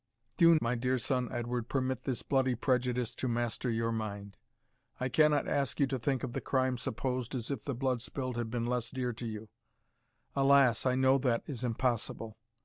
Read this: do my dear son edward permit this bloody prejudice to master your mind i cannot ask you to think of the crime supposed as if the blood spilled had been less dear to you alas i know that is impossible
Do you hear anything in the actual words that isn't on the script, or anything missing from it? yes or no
no